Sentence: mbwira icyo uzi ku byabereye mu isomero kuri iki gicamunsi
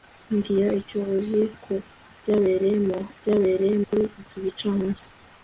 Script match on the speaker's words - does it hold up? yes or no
no